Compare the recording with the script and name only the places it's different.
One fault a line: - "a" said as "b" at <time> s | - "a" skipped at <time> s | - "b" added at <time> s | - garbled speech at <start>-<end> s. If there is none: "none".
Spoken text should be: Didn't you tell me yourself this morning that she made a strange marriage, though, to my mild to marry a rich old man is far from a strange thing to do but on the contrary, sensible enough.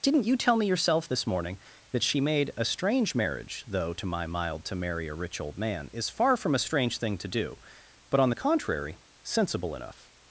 none